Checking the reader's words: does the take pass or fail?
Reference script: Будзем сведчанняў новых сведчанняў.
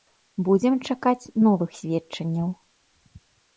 fail